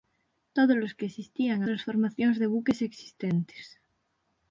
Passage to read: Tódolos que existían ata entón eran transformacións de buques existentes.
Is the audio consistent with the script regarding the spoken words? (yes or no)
no